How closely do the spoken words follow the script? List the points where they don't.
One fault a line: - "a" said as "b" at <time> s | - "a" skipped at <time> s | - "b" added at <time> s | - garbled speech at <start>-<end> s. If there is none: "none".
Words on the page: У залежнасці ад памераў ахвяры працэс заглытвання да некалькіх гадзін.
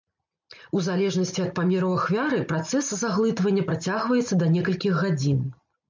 - "працягваецца" added at 3.7 s